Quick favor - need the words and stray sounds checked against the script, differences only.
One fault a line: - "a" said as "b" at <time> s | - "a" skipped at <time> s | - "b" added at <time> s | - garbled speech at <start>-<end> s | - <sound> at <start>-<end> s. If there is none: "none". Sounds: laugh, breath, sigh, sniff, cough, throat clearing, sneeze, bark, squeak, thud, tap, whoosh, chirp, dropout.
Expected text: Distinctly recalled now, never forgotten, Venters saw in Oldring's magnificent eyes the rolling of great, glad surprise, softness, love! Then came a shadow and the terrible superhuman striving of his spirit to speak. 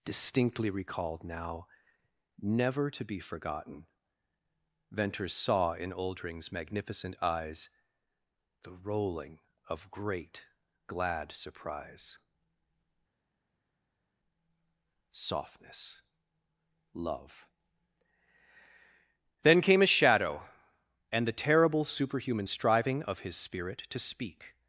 - "to be" added at 2.9 s